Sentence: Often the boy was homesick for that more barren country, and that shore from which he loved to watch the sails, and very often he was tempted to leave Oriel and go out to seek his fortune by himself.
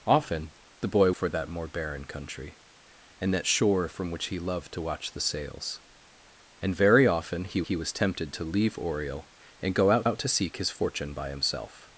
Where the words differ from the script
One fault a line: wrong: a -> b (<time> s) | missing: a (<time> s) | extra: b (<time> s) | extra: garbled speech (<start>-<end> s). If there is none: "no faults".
missing: was homesick (1.1 s)
extra: he (7.6 s)
extra: out (10.0 s)